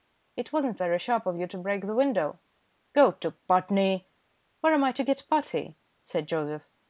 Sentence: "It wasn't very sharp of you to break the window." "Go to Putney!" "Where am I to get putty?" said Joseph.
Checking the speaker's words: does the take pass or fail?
pass